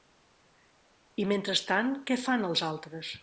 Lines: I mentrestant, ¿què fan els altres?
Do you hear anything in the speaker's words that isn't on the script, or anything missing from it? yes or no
no